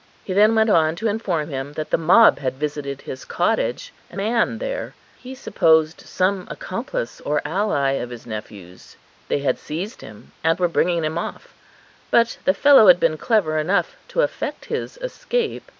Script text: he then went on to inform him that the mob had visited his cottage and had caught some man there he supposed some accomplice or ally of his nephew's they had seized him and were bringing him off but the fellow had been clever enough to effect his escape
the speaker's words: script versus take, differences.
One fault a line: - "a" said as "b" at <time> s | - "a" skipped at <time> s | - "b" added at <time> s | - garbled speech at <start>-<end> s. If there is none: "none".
- "had caught some" skipped at 4.2 s